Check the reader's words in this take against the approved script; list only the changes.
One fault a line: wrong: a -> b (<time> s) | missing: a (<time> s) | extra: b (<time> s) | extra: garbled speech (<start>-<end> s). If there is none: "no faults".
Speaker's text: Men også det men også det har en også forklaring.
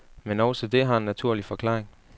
missing: men også det (0.8 s)
wrong: også -> naturlig (1.1 s)